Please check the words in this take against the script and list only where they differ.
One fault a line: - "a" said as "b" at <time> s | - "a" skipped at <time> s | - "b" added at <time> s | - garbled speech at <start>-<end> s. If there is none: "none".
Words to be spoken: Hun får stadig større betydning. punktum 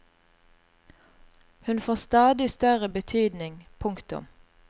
none